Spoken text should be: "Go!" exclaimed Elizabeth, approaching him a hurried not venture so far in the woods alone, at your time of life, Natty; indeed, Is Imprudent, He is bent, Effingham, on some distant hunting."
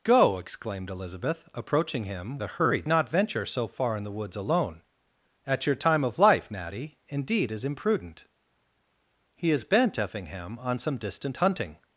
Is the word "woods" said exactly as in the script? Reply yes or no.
yes